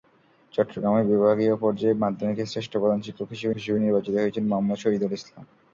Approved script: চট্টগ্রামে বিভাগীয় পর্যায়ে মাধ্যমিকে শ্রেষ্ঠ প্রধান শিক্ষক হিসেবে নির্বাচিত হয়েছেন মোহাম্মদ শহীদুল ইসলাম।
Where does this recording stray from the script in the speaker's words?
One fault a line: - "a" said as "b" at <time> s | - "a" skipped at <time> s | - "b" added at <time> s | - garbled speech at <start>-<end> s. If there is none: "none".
- "হিসেবে" added at 3.6 s